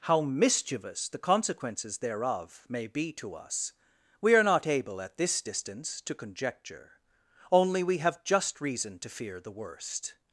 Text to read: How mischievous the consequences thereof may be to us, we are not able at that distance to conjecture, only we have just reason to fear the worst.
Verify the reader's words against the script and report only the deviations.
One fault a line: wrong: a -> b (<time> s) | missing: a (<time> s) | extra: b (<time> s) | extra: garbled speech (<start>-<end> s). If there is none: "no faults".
wrong: that -> this (5.2 s)